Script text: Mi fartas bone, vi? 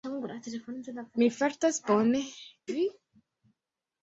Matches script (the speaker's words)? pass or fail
pass